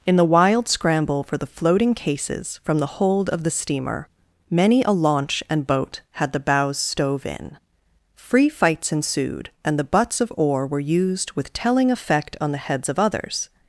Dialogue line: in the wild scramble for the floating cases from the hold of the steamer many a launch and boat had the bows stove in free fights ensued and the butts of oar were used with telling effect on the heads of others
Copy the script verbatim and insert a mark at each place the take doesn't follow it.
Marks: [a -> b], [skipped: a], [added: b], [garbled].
in the wild scramble for the floating cases from the hold of the steamer many a launch and boat had the bows stove in free fights ensued and the butts of oar were used with telling effect on the heads of others